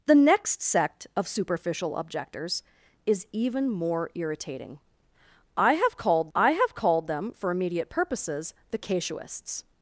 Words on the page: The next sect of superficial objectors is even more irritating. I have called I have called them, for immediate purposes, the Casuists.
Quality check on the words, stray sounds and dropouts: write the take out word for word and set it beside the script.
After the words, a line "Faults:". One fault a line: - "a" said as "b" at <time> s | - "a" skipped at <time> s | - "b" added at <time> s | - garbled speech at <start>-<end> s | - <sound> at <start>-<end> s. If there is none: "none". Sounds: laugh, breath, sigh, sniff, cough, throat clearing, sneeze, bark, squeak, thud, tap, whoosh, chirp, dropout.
The next sect of superficial objectors is even more irritating. I have called I have called them, for immediate purposes, the Casuists.
Faults:
none